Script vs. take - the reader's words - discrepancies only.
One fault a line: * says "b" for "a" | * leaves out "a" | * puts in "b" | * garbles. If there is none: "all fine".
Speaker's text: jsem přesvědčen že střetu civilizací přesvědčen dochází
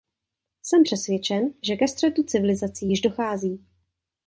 * puts in "ke"
* says "již" for "přesvědčen"